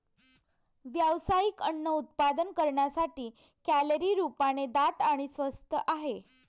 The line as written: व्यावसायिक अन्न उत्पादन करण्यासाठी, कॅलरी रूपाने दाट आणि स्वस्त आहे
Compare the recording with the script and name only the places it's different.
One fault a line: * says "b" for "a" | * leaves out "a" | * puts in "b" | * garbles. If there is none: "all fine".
all fine